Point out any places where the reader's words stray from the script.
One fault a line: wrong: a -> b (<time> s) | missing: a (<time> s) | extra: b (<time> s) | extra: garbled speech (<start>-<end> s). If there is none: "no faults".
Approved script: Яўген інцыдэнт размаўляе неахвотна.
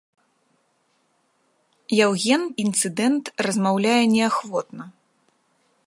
no faults